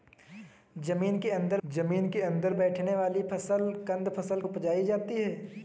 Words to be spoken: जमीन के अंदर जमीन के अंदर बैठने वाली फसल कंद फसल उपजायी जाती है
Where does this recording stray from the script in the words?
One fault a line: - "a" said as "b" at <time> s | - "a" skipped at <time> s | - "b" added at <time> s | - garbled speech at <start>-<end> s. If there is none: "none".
none